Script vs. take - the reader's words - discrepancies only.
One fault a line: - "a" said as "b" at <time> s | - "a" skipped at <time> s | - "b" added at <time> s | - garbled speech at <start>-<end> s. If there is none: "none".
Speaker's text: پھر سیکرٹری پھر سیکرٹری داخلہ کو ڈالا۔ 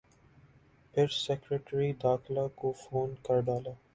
- "پھر سیکرٹری داخلہ کو" said as "داخلہ کو فون کر" at 2.0 s